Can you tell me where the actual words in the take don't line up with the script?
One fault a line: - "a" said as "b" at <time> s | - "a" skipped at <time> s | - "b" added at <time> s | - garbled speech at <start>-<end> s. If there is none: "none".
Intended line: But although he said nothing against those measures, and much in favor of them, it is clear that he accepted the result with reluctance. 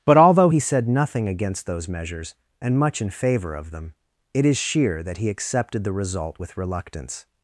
- "clear" said as "sheer" at 4.6 s